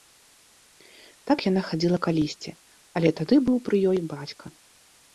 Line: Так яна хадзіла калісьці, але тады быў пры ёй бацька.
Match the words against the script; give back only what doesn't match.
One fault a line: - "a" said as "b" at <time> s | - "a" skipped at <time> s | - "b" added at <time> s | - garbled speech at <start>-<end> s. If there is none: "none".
none